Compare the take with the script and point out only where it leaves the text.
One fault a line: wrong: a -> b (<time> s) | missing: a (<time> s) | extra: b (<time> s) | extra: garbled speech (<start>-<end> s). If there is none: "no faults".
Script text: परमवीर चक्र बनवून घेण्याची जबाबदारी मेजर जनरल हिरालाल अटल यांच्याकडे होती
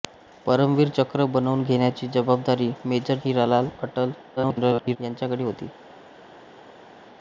missing: जनरल (3.2 s)
extra: garbled speech (4.4-5.0 s)